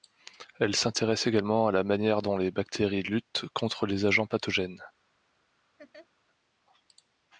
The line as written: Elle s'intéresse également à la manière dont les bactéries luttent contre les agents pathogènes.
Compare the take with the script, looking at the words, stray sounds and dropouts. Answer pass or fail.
fail